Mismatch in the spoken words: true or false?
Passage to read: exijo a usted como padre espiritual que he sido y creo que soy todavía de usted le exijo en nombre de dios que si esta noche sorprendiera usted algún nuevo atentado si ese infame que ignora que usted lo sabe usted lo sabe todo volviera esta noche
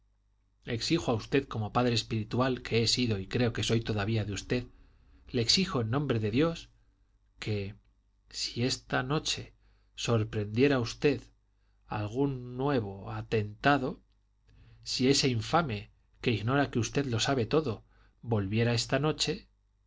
true